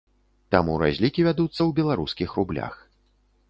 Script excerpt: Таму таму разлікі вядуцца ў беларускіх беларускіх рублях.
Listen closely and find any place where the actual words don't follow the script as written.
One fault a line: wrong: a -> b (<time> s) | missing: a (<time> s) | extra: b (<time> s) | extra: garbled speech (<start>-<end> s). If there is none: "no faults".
missing: таму (0.8 s)
missing: беларускіх (2.3 s)